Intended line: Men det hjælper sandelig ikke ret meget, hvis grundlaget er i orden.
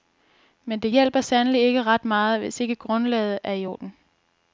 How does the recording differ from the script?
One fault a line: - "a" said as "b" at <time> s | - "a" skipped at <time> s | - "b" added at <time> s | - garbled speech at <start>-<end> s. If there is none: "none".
- "ikke" added at 2.6 s